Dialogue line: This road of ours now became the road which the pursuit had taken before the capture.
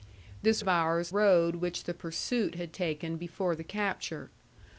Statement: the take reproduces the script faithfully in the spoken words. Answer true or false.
false